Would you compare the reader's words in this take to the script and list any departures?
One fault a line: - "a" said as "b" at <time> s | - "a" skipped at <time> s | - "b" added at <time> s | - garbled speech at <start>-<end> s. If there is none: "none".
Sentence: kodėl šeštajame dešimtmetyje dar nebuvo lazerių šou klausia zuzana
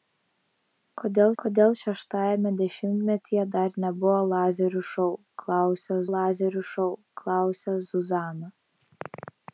- "kodėl" added at 1.4 s
- "lazerių šou klausia" added at 6.1 s